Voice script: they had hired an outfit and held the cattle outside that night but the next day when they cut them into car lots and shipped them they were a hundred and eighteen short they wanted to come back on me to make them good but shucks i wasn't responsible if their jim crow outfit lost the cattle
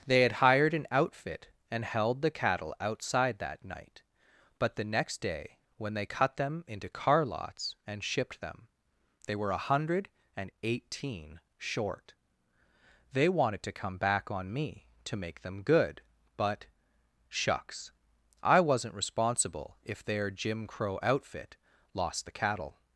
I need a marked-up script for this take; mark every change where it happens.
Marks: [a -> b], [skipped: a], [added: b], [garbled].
they had hired an outfit and held the cattle outside that night but the next day when they cut them into car lots and shipped them they were a hundred and eighteen short they wanted to come back on me to make them good but shucks i wasn't responsible if their jim crow outfit lost the cattle